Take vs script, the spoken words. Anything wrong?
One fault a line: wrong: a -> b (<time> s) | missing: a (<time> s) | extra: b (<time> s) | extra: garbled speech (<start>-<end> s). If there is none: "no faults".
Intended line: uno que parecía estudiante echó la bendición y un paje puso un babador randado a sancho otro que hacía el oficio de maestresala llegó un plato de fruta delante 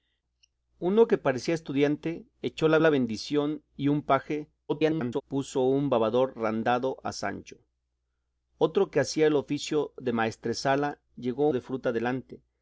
extra: la (2.8 s)
extra: garbled speech (4.7-5.2 s)
missing: un plato (11.5 s)